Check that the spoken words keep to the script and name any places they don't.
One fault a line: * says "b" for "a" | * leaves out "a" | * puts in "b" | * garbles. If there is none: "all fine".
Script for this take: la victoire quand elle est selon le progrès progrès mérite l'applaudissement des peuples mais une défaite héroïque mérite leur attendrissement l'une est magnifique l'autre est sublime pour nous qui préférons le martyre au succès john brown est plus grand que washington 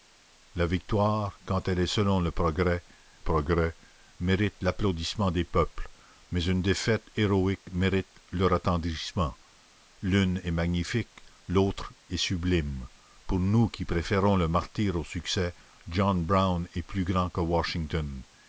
all fine